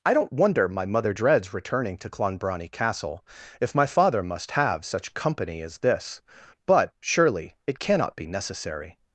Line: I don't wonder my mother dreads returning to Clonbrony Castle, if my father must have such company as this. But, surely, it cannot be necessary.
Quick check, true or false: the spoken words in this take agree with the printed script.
true